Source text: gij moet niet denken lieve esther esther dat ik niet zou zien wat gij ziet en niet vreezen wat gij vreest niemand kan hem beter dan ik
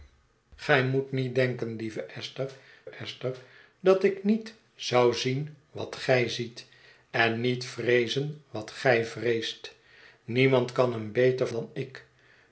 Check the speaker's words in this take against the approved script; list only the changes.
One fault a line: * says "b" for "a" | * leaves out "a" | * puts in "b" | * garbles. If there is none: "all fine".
all fine